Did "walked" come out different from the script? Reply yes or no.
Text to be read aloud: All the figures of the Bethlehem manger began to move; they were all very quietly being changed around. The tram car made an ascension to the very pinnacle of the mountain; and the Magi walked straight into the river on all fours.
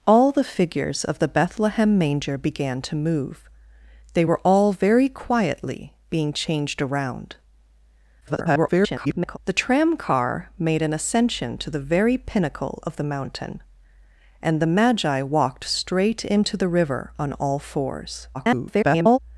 no